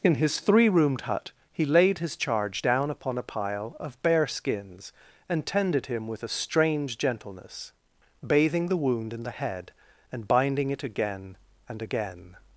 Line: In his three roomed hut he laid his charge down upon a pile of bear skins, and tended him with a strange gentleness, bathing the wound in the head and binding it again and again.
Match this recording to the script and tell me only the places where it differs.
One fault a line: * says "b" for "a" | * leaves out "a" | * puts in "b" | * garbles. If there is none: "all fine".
all fine